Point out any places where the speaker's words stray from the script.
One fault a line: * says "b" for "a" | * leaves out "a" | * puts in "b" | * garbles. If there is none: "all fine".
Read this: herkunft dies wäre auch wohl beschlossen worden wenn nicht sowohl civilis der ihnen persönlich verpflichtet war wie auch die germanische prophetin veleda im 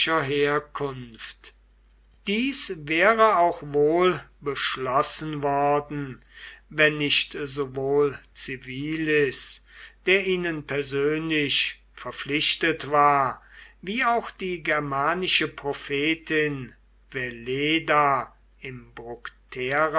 all fine